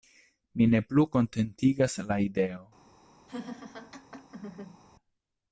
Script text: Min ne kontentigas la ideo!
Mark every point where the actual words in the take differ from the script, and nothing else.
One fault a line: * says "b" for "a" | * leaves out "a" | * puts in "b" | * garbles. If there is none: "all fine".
* puts in "plu"